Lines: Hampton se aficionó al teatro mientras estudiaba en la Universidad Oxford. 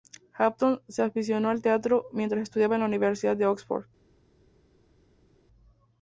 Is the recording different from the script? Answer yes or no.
yes